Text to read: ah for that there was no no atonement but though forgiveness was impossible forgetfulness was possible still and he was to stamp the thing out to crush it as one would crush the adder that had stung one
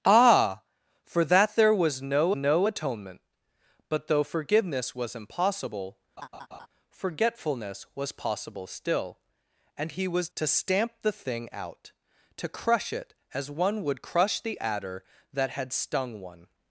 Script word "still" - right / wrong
right